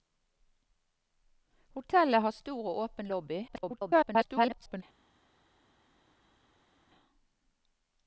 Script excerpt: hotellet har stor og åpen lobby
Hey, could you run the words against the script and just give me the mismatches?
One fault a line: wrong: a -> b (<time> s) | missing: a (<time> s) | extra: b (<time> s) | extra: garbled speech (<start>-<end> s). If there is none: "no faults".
extra: garbled speech (3.5-4.8 s)